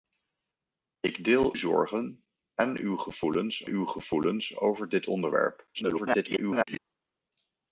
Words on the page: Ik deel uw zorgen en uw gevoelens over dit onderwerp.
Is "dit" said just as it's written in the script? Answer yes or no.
yes